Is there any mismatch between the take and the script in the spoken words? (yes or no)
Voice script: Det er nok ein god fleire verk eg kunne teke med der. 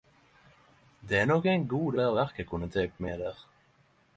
no